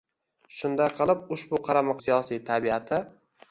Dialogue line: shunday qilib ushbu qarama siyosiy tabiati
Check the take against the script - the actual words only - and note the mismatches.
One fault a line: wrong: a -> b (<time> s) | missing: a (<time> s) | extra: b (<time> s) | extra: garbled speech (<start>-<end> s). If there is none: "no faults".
no faults